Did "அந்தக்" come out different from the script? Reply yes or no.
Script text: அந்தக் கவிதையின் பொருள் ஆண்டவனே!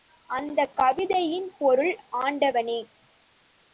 no